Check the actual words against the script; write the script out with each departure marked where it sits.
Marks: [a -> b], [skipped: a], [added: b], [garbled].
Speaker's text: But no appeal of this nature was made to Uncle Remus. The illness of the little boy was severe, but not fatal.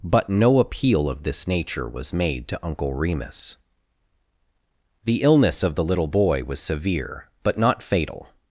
But no appeal of this nature was made to Uncle Remus. The illness of the little boy was severe, but not fatal.